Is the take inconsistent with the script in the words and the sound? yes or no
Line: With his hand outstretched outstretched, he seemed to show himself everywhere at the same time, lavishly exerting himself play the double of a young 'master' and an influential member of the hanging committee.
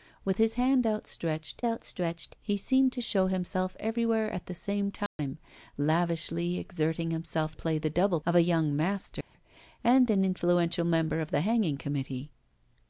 yes